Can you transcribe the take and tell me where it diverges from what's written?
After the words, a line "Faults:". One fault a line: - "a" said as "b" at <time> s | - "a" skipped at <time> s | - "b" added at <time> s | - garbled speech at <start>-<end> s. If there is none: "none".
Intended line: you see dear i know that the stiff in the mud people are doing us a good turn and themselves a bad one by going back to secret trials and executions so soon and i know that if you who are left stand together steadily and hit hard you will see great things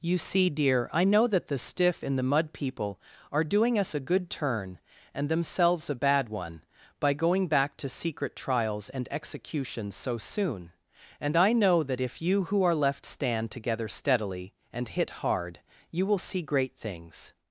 you see dear i know that the stiff in the mud people are doing us a good turn and themselves a bad one by going back to secret trials and executions so soon and i know that if you who are left stand together steadily and hit hard you will see great things
Faults:
none